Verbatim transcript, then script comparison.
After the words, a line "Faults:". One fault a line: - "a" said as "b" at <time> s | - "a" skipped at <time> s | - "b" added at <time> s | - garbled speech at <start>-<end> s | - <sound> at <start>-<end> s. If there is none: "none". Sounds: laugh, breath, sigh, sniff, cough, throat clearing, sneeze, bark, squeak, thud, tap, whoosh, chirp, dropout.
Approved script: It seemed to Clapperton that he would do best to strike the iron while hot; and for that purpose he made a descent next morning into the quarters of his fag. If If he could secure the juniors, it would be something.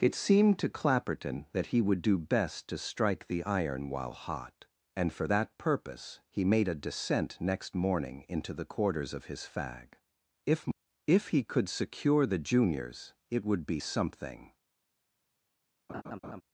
It seemed to Clapperton that he would do best to strike the iron while hot; and for that purpose he made a descent next morning into the quarters of his fag. If If he could secure the juniors, it would be something.
Faults:
- laugh at 15.9-16.4 s